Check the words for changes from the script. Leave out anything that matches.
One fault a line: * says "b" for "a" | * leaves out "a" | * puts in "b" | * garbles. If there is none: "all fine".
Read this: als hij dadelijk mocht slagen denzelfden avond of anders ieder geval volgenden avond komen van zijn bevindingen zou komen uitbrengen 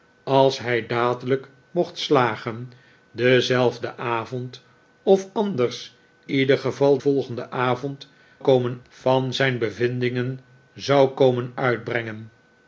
all fine